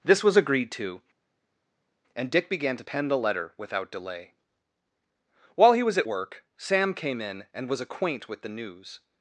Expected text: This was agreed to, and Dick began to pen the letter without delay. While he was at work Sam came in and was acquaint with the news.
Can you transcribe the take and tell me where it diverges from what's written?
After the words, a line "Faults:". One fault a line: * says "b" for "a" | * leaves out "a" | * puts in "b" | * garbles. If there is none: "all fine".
This was agreed to, and Dick began to pen the letter without delay. While he was at work Sam came in and was acquaint with the news.
Faults:
all fine